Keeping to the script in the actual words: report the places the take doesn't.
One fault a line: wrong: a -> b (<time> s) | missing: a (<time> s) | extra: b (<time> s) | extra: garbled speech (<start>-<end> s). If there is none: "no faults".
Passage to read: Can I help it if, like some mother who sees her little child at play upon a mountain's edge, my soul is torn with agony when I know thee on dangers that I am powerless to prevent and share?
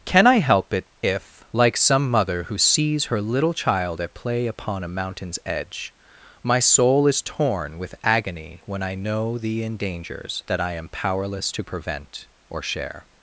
wrong: on -> in (9.6 s)
wrong: and -> or (12.5 s)